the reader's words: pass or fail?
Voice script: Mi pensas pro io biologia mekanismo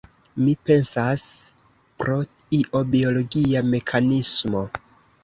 pass